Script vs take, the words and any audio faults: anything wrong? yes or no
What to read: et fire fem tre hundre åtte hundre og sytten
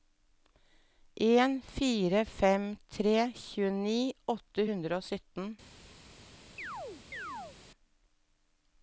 yes